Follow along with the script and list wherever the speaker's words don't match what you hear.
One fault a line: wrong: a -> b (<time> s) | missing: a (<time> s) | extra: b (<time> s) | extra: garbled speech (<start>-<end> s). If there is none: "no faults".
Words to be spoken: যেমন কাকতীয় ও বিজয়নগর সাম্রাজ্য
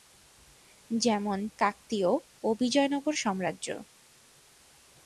no faults